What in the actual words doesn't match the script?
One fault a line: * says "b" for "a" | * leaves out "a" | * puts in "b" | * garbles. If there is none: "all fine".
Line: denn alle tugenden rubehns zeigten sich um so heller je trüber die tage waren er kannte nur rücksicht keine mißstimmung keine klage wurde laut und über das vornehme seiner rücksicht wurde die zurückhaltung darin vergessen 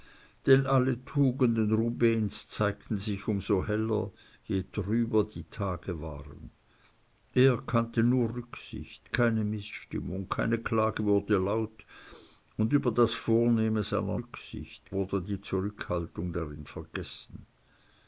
all fine